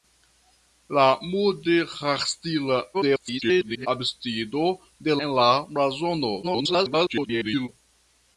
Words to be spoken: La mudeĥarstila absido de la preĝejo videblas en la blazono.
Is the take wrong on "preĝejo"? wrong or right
wrong